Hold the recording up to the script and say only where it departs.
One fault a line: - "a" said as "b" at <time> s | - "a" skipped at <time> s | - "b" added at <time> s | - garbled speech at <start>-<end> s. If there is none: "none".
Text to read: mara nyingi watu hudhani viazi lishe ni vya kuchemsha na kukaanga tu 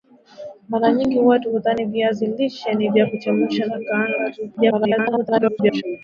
- garbled speech at 4.6-5.8 s